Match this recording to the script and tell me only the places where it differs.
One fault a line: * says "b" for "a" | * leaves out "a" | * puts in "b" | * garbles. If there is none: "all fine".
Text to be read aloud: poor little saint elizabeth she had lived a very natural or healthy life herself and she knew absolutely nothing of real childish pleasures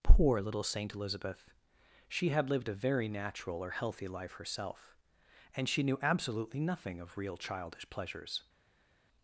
all fine